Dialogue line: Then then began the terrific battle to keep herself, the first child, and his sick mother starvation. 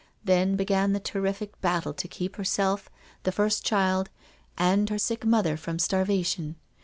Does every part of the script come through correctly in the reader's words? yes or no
no